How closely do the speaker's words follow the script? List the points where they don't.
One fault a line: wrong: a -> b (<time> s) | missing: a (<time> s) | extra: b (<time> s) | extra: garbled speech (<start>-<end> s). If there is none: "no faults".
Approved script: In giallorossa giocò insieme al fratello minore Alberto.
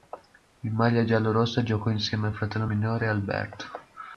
extra: maglia (0.7 s)